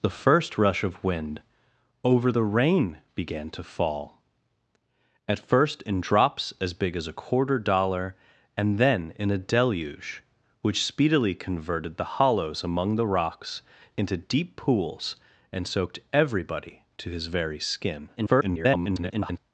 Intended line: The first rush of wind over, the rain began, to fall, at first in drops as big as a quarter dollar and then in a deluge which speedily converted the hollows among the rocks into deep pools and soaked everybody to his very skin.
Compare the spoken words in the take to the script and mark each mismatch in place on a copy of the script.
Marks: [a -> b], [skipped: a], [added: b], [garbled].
The first rush of wind over, the rain began, to fall, at first in drops as big as a quarter dollar and then in a deluge which speedily converted the hollows among the rocks into deep pools and soaked everybody to his very skin. [garbled]